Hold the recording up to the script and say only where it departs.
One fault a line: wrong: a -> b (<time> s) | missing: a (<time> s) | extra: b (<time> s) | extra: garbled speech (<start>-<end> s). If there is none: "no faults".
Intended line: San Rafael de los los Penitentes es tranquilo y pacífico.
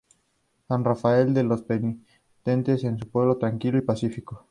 missing: los (1.6 s)
extra: un pueblo (2.9 s)